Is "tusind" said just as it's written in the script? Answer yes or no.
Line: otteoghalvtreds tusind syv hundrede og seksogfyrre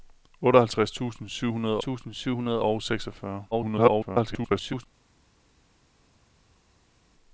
yes